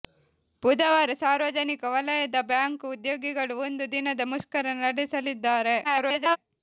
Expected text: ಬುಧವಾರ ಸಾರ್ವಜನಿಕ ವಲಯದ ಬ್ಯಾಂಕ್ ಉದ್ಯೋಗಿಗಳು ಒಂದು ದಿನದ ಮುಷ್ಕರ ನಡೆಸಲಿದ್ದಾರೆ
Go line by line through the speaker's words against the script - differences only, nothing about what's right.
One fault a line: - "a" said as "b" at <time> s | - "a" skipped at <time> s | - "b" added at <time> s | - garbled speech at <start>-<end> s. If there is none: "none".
- garbled speech at 5.8-6.4 s